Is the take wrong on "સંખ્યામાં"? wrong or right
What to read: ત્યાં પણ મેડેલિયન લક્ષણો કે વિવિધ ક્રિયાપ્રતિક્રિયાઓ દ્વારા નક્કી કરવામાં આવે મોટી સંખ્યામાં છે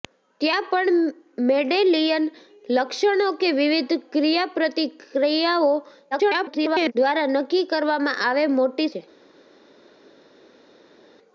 wrong